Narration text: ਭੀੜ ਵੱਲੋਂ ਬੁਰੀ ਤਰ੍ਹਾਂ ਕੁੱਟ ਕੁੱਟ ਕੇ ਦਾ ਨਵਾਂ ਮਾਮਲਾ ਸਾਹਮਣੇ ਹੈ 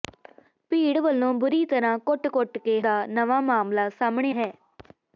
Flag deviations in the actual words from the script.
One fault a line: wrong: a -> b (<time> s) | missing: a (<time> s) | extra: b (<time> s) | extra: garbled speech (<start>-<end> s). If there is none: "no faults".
no faults